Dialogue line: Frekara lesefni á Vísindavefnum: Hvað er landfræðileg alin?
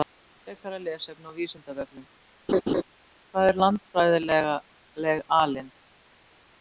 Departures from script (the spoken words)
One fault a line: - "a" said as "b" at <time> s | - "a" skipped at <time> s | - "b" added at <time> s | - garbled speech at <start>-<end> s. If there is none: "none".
none